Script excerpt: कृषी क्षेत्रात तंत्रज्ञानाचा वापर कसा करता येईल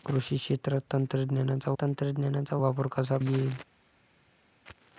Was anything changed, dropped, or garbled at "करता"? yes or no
yes